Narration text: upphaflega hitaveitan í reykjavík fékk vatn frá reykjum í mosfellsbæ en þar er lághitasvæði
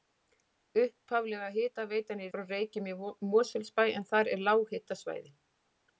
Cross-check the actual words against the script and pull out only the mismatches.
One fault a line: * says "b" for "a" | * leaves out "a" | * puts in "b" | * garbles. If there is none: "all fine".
* leaves out "reykjavík fékk vatn"